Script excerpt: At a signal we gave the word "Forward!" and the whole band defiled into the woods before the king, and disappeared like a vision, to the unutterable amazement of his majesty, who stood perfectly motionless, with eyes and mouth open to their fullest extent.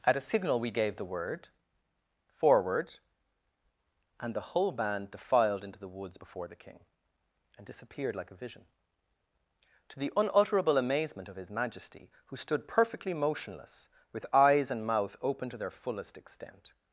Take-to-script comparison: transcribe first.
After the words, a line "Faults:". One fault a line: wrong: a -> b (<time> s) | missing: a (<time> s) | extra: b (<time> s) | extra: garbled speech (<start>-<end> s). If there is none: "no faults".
At a signal we gave the word "Forward!" and the whole band defiled into the woods before the king, and disappeared like a vision, to the unutterable amazement of his majesty, who stood perfectly motionless, with eyes and mouth open to their fullest extent.
Faults:
no faults